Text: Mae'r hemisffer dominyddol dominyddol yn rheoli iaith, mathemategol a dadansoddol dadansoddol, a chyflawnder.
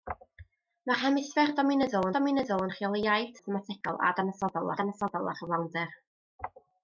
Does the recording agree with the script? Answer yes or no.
yes